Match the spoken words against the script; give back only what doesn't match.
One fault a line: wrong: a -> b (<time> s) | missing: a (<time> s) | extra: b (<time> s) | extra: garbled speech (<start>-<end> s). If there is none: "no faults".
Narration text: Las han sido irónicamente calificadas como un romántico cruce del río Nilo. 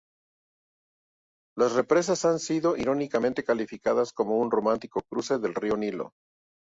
extra: represas (1.7 s)